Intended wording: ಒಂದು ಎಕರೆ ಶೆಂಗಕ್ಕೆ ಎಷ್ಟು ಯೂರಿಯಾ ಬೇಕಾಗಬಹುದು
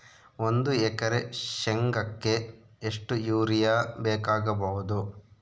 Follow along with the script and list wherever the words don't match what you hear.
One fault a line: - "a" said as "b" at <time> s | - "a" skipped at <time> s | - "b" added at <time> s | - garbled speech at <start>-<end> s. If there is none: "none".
none